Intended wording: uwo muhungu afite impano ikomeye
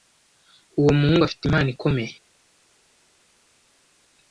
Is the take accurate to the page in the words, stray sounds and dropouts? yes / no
yes